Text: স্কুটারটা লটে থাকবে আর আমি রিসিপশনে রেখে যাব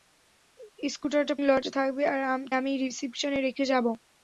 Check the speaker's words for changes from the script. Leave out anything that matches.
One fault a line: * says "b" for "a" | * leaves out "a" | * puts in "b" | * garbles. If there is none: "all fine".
all fine